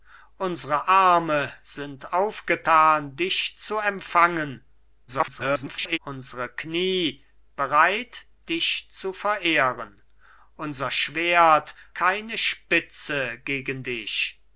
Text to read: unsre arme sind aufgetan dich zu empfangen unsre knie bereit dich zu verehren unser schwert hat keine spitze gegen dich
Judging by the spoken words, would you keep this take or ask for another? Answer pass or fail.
fail